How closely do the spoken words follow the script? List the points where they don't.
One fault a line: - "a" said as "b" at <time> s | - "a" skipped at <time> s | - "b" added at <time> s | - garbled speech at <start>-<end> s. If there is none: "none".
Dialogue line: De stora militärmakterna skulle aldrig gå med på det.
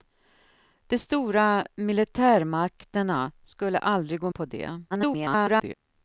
- "med" skipped at 4.3 s
- garbled speech at 4.9-5.7 s